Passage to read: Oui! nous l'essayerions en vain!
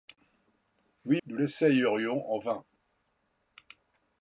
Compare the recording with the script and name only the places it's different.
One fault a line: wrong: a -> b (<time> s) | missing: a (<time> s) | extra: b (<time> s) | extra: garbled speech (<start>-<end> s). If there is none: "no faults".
no faults